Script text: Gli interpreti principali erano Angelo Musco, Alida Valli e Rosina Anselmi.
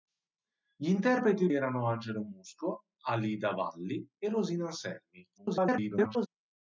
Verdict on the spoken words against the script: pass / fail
fail